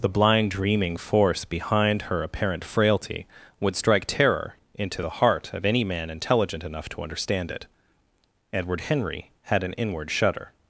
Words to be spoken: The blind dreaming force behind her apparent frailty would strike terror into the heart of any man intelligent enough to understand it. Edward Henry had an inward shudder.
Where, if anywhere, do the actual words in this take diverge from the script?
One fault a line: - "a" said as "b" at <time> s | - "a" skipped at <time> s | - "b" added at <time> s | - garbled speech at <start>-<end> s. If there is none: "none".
none